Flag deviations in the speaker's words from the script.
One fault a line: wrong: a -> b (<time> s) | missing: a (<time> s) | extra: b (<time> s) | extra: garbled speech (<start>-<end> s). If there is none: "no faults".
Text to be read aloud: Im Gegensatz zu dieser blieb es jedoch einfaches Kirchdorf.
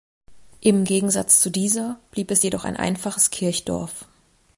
extra: ein (2.6 s)